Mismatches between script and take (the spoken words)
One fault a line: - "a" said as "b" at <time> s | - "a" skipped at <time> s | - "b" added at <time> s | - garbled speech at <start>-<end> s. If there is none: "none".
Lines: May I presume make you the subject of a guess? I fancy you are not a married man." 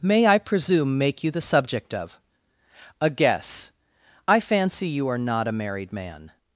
none